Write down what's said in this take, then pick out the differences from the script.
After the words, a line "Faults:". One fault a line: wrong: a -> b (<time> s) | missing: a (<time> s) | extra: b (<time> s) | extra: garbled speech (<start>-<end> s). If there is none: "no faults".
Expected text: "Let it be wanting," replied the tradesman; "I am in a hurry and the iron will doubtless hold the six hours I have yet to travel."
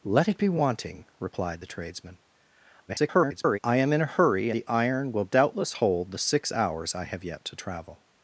"Let it be wanting," replied the tradesman; [garbled] "I am in a hurry the iron will doubtless hold the six hours I have yet to travel."
Faults:
extra: garbled speech (2.9-3.6 s)
missing: and (4.5 s)